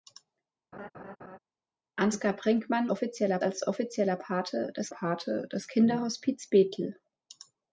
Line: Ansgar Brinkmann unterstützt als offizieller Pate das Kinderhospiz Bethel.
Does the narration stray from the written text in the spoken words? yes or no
yes